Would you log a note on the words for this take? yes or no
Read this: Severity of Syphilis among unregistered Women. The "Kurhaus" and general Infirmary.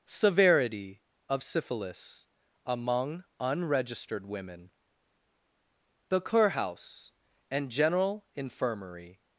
no